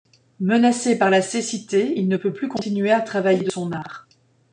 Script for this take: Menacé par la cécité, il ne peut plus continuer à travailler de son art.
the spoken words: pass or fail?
pass